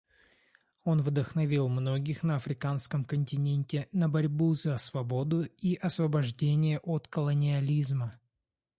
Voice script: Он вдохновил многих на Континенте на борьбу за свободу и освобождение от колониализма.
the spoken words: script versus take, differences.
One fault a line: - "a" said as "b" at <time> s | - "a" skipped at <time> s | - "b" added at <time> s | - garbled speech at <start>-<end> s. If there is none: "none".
- "Африканском" added at 2.4 s